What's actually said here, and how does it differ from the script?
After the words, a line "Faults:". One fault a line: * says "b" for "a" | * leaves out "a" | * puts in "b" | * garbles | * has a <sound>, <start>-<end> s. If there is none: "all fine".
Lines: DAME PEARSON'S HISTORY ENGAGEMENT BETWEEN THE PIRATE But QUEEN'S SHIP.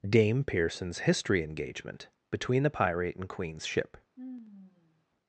DAME PEARSON'S HISTORY ENGAGEMENT BETWEEN THE PIRATE AND QUEEN'S SHIP.
Faults:
* says "AND" for "But"
* has a sigh, 4.2-5.1 s